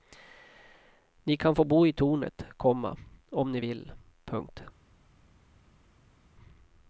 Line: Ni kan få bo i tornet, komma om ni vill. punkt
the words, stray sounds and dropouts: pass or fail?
pass